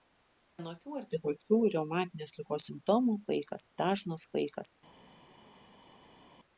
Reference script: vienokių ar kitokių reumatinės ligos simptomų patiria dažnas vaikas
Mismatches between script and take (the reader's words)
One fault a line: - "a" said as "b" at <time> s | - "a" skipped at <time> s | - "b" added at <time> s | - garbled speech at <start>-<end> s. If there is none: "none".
- "patiria" said as "vaikas" at 3.3 s